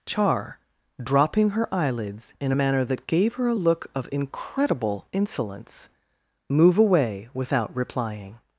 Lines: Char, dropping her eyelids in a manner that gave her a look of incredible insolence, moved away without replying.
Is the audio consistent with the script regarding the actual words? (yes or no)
no